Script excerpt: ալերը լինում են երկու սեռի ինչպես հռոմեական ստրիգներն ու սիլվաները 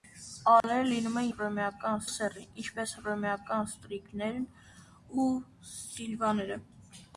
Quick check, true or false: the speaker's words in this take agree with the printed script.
false